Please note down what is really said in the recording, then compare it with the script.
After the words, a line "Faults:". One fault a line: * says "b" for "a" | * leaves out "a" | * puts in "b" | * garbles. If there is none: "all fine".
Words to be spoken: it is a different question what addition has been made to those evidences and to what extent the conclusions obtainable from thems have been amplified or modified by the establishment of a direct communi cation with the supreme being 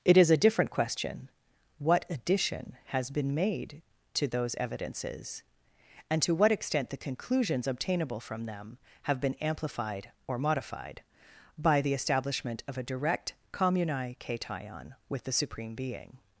it is a different question what addition has been made to those evidences and to what extent the conclusions obtainable from them have been amplified or modified by the establishment of a direct communi cation with the supreme being
Faults:
* says "them" for "thems"